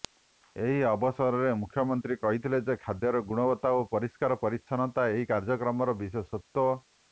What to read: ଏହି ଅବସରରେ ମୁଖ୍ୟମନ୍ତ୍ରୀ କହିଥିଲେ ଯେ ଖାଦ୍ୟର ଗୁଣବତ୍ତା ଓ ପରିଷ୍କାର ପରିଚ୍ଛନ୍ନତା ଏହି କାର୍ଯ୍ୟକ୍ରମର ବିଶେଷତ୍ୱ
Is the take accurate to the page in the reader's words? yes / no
yes